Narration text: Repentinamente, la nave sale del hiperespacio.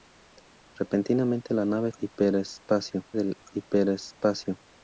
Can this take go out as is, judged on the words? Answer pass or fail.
fail